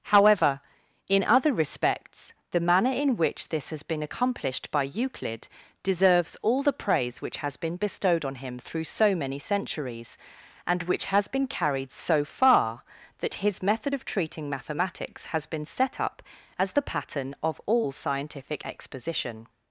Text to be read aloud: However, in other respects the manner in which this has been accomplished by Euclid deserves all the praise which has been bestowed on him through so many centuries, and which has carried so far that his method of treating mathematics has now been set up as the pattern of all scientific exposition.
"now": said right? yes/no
no